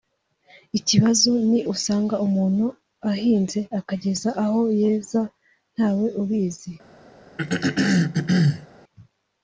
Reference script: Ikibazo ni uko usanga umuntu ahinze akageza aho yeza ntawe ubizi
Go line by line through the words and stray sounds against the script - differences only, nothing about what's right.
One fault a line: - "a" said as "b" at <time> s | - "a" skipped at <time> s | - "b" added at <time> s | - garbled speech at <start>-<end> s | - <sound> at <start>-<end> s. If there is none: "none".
- "uko" skipped at 1.6 s
- throat clearing at 7.4-8.7 s